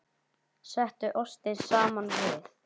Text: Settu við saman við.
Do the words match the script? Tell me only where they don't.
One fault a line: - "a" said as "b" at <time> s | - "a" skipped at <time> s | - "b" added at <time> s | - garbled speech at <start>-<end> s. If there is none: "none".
- "við" said as "ostinn" at 1.2 s